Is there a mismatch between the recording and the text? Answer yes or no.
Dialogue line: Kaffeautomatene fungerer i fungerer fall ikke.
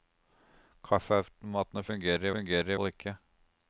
no